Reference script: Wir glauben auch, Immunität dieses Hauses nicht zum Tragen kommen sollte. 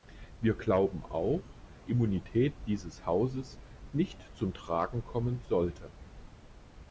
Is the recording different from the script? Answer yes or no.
no